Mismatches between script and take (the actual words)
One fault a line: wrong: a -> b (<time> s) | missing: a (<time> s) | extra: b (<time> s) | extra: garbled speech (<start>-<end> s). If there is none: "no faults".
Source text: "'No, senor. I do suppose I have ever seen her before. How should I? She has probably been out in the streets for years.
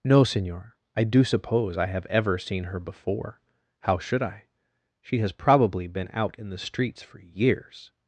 no faults